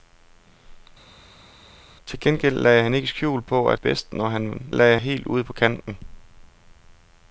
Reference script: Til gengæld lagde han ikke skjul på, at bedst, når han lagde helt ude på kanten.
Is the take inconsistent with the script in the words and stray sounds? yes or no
no